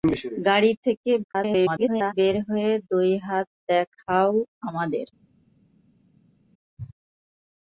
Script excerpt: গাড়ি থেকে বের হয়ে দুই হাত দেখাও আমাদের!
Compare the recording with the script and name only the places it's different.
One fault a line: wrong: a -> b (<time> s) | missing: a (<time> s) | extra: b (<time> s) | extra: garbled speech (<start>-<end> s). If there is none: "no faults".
extra: garbled speech (1.2-2.1 s)